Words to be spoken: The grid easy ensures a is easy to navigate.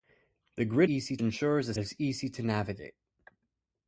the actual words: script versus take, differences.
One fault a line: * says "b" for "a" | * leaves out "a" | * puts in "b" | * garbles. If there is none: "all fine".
all fine